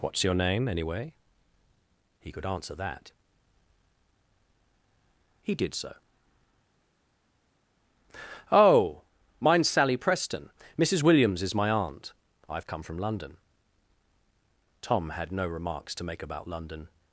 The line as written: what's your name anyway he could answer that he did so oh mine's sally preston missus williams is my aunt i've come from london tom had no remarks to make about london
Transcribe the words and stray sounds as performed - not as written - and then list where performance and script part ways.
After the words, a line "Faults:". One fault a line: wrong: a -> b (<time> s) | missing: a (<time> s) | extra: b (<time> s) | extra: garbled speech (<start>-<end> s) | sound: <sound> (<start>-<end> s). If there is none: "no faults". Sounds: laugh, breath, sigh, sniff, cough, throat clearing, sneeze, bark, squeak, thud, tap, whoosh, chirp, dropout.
what's your name anyway he could answer that he did so oh mine's sally preston missus williams is my aunt i've come from london tom had no remarks to make about london
Faults:
no faults